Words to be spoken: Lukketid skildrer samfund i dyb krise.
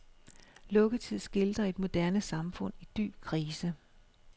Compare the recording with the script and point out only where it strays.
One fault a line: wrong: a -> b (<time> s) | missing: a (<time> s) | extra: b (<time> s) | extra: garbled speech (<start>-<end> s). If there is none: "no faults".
extra: et moderne (1.6 s)